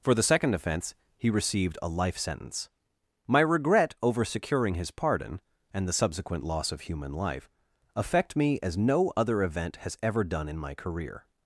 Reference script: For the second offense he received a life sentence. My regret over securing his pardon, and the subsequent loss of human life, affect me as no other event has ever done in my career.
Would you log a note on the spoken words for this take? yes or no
no